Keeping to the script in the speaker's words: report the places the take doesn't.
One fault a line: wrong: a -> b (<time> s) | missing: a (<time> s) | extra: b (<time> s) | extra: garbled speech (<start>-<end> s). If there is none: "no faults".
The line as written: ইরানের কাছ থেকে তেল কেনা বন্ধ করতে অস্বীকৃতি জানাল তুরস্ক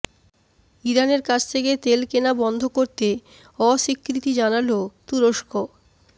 no faults